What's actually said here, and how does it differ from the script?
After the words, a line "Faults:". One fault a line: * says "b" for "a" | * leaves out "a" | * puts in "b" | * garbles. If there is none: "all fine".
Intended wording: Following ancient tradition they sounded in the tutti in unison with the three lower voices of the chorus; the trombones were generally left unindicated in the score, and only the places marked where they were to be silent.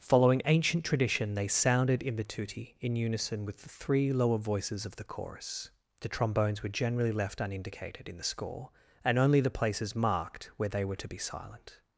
Following ancient tradition they sounded in the tutti in unison with the three lower voices of the chorus; the trombones were generally left unindicated in the score, and only the places marked where they were to be silent.
Faults:
all fine